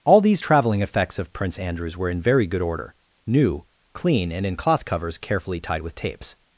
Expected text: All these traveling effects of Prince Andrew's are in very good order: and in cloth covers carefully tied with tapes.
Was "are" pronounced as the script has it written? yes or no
no